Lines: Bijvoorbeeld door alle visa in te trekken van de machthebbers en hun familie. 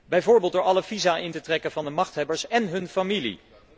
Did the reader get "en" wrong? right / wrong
right